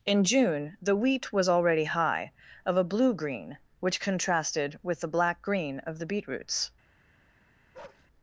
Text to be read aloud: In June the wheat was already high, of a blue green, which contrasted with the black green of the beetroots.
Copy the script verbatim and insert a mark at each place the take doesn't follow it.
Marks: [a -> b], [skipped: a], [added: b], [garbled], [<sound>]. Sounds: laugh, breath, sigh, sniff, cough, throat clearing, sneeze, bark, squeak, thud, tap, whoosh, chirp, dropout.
In June the wheat was already high, of a blue green, which contrasted with the black green of the beetroots. [bark]